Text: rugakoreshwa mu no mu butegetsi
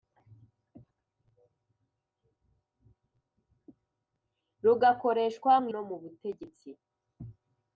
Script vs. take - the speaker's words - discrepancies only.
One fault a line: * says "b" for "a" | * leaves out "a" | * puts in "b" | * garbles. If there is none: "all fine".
all fine